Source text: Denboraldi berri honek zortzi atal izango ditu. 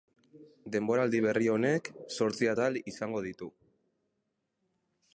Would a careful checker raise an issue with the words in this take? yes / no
no